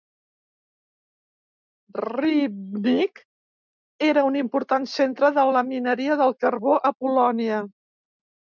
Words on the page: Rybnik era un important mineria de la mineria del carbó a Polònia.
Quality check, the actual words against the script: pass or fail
fail